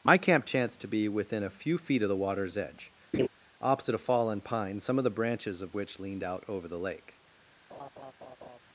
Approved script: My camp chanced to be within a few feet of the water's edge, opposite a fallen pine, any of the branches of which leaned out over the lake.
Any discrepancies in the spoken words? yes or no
yes